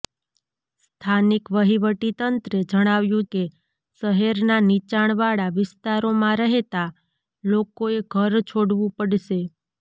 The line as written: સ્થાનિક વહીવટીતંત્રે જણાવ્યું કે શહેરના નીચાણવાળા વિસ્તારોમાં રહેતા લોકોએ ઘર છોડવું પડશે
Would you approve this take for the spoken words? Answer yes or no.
yes